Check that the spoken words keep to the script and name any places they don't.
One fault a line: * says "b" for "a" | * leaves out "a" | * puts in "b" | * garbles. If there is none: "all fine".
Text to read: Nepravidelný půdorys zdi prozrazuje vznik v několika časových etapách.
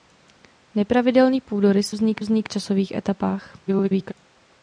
* leaves out "zdi prozrazuje"
* says "vznik" for "několika"
* garbles